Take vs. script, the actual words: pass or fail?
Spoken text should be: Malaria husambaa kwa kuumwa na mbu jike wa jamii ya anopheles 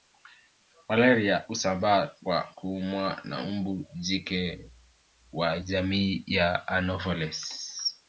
pass